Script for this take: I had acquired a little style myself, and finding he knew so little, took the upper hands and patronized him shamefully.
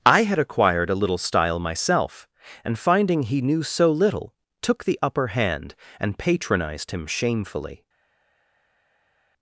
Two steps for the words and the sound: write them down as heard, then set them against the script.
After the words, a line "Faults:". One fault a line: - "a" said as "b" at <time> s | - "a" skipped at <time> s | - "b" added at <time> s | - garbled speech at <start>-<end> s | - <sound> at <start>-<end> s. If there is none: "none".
I had acquired a little style myself, and finding he knew so little, took the upper hand and patronized him shamefully.
Faults:
- "hands" said as "hand" at 5.3 s